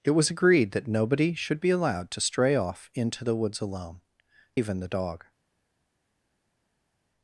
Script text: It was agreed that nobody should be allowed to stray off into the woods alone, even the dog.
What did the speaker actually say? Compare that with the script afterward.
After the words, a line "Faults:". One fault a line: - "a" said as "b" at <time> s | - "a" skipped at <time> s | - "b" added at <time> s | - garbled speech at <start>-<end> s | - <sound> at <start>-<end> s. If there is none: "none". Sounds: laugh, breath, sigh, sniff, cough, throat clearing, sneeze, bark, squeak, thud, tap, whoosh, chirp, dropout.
It was agreed that nobody should be allowed to stray off into the woods alone, even the dog.
Faults:
none